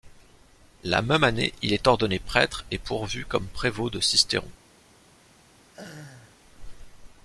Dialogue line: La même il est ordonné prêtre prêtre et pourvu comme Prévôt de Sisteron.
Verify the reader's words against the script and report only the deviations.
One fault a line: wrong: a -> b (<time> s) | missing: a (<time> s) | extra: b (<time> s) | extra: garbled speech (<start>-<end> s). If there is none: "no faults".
extra: année (1.2 s)
missing: prêtre (2.6 s)